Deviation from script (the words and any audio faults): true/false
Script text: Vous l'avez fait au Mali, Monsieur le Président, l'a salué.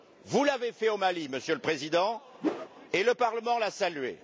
true